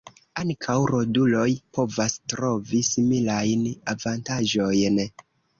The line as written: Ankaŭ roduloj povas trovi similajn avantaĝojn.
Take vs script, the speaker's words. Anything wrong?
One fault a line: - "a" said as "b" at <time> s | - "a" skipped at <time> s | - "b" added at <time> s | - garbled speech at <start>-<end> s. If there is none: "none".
none